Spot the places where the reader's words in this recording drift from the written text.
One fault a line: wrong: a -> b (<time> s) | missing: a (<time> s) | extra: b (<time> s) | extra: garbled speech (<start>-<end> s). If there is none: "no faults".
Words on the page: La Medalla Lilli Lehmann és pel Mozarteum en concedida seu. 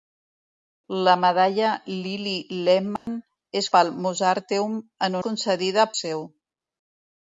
no faults